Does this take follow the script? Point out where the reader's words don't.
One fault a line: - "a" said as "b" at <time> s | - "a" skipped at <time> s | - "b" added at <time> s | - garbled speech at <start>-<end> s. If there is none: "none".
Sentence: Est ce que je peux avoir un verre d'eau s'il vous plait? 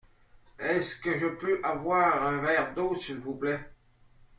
none